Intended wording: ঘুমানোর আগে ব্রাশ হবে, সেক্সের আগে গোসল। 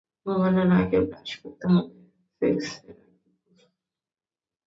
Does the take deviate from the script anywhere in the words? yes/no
yes